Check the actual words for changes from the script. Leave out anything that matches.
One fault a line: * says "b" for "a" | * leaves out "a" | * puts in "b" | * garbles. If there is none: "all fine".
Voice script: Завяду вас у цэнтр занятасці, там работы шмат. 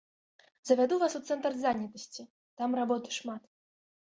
all fine